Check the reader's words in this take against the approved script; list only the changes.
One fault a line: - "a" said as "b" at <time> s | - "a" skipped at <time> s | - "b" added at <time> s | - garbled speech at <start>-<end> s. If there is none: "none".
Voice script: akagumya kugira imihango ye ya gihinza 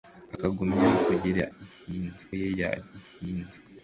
- "imihango" said as "gihinza" at 1.5 s